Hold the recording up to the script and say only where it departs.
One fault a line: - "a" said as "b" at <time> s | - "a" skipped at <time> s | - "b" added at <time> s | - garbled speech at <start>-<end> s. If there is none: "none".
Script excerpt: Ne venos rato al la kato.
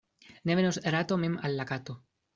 - "mem" added at 1.2 s